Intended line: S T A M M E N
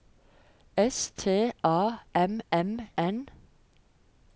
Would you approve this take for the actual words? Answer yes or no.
no